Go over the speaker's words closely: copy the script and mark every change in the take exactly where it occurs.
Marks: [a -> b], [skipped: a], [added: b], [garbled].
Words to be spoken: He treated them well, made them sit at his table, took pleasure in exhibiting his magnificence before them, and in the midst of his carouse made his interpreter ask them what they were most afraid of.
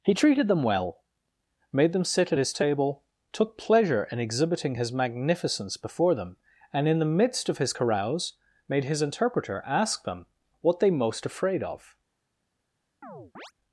He treated them well, made them sit at his table, took pleasure in exhibiting his magnificence before them, and in the midst of his carouse made his interpreter ask them what they [skipped: were] most afraid of.